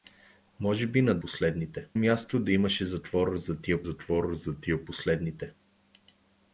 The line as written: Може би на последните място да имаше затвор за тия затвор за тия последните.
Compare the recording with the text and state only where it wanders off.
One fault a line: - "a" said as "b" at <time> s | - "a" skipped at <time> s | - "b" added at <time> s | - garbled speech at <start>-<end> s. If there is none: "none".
none